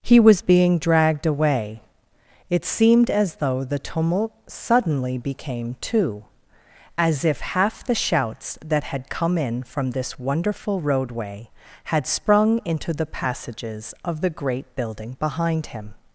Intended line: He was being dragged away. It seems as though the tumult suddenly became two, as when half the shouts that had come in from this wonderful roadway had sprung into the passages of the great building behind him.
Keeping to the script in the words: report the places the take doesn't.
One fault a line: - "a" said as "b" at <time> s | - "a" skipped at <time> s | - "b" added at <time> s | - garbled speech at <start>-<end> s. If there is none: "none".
- "seems" said as "seemed" at 2.6 s
- "when" said as "if" at 7.2 s